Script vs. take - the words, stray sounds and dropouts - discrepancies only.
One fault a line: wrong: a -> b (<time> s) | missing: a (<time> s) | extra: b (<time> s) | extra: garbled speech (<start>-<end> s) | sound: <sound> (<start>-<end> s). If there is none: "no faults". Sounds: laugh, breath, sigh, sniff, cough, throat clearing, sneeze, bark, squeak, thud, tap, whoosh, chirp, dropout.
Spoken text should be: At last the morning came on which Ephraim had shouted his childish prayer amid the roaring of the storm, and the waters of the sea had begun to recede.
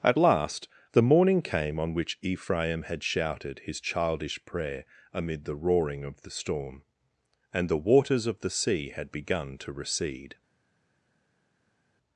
no faults